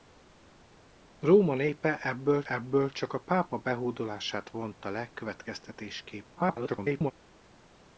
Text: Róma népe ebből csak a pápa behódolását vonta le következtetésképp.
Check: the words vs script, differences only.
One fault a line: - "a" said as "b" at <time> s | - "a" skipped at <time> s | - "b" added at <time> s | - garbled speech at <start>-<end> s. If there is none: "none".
- "ebből" added at 2.5 s
- garbled speech at 6.3-7.1 s